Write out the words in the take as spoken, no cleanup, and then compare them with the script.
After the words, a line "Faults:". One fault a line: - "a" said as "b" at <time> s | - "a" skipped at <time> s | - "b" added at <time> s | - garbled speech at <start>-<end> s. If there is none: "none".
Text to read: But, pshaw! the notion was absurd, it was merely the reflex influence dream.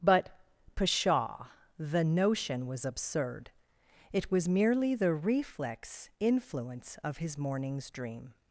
But, pshaw! the notion was absurd, it was merely the reflex influence of his morning's dream.
Faults:
- "of his morning's" added at 7.0 s